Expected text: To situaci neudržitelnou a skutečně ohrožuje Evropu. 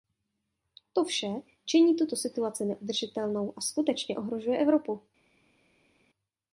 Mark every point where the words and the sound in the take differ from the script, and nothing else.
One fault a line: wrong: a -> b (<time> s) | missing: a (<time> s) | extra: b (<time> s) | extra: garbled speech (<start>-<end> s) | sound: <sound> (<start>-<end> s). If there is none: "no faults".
extra: vše činí tuto (1.0 s)